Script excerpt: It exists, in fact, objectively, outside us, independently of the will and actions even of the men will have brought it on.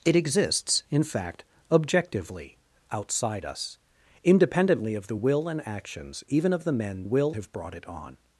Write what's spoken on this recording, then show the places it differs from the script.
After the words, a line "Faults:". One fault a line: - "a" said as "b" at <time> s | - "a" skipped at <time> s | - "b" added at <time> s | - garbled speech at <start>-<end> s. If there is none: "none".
It exists, in fact, objectively, outside us, independently of the will and actions even of the men will have brought it on.
Faults:
none